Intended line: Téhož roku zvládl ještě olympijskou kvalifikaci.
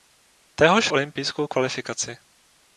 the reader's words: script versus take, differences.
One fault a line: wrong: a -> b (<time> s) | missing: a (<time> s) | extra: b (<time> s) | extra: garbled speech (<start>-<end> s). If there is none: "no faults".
missing: roku zvládl ještě (0.9 s)